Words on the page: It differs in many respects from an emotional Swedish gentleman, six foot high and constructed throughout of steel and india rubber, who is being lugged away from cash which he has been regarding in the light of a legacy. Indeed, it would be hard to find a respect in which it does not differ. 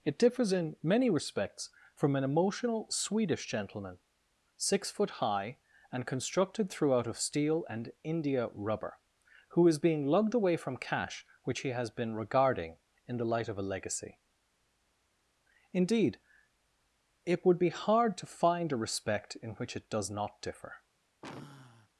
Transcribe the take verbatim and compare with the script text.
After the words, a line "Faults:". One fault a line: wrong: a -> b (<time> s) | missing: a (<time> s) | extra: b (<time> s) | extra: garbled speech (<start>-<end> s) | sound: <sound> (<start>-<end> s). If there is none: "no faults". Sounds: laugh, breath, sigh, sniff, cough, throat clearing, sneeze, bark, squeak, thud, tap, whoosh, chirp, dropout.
It differs in many respects from an emotional Swedish gentleman, six foot high and constructed throughout of steel and india rubber, who is being lugged away from cash which he has been regarding in the light of a legacy. Indeed, it would be hard to find a respect in which it does not differ.
Faults:
sound: sigh (21.2-21.9 s)